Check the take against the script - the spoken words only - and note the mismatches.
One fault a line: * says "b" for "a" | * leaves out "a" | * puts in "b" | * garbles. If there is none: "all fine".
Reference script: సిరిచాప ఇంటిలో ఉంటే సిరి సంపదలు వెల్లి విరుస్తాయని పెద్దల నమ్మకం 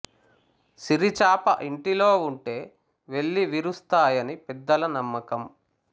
* leaves out "సిరి సంపదలు"